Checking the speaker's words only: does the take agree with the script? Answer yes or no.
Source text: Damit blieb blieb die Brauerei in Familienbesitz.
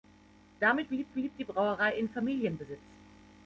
yes